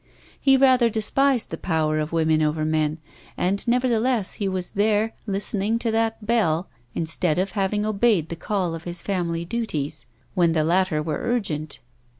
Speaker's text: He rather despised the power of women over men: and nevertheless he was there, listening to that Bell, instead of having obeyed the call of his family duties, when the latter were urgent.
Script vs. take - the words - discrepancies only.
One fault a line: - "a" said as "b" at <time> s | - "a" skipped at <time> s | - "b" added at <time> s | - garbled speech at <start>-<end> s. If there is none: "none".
none